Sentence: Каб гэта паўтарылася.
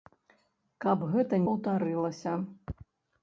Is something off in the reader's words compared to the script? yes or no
no